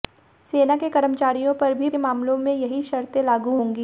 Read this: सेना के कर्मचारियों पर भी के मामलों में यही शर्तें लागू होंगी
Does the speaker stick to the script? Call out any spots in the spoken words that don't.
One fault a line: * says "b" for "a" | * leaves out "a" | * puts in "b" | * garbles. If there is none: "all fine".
all fine